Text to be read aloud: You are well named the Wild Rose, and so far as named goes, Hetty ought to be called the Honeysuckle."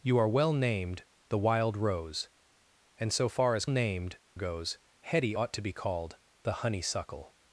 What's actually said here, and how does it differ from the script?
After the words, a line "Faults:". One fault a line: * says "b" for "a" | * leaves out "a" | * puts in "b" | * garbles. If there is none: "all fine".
You are well named the Wild Rose, and so far as named goes, Hetty ought to be called the Honeysuckle."
Faults:
all fine